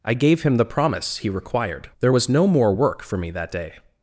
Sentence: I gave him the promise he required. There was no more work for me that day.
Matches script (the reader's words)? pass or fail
pass